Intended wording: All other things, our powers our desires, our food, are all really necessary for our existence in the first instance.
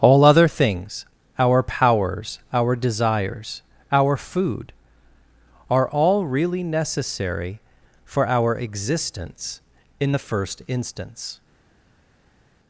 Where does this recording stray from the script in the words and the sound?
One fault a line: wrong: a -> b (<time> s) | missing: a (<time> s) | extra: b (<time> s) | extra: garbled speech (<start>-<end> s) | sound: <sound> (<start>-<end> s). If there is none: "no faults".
no faults